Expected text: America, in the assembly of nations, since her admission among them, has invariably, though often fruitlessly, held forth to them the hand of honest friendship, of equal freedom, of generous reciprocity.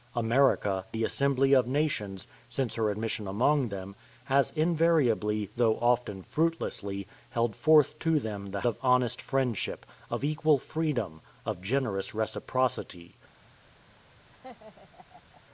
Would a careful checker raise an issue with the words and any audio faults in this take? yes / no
yes